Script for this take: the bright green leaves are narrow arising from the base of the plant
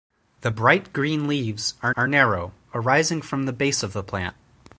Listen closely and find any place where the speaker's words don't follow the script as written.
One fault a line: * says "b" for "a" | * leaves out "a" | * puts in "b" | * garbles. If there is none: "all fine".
* puts in "are"